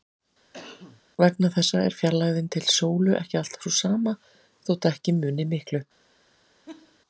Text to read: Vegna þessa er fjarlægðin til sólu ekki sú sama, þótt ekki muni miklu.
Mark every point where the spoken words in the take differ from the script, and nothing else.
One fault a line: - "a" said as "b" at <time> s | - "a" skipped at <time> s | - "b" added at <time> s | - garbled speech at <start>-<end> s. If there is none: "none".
- "alltaf" added at 3.4 s